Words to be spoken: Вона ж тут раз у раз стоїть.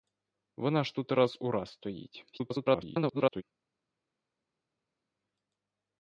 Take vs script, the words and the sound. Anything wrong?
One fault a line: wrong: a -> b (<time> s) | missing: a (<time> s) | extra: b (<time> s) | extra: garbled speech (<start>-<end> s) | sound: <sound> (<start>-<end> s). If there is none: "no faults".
extra: garbled speech (2.3-3.4 s)